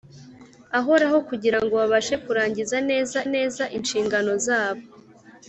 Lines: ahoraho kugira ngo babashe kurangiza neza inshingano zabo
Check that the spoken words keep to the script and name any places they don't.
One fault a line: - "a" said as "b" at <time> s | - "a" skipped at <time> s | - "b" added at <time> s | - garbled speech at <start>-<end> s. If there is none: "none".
- "neza" added at 3.3 s